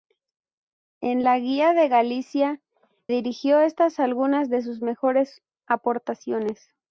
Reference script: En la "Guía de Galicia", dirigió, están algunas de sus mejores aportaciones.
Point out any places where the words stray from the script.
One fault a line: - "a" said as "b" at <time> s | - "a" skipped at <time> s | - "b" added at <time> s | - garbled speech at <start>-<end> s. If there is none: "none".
none